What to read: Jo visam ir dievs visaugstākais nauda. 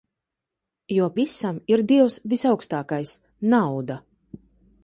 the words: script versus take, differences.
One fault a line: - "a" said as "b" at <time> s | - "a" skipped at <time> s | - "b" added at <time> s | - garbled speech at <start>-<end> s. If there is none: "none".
none